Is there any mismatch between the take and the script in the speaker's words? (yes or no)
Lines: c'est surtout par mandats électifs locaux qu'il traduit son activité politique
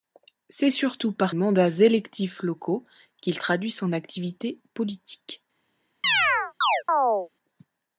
no